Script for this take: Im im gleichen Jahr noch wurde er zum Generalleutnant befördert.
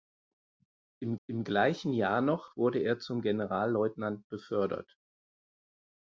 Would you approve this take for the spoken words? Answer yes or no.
yes